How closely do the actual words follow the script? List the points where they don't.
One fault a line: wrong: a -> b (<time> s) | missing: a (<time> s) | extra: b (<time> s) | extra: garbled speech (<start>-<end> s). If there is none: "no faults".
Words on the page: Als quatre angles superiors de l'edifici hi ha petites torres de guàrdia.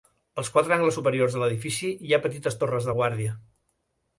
no faults